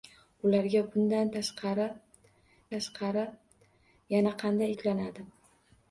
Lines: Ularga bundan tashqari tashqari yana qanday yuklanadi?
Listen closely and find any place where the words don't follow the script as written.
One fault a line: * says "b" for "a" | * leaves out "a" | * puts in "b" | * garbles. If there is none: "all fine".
all fine